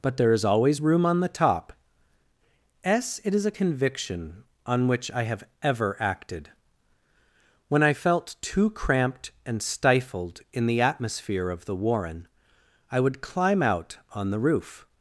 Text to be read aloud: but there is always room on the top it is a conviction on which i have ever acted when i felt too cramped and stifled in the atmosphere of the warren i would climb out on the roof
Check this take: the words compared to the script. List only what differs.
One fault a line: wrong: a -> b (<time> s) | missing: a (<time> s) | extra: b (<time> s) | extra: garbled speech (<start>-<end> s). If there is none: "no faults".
extra: s (2.8 s)